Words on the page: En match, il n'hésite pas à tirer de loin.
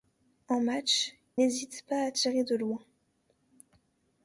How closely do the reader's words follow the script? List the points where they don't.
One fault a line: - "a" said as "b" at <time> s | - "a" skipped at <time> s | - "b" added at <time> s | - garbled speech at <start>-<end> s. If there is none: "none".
- "il" skipped at 1.1 s